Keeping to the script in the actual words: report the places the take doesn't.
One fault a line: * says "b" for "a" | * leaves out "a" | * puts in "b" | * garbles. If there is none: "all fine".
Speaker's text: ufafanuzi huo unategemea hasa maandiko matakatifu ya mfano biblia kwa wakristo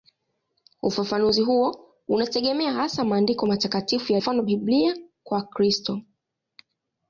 all fine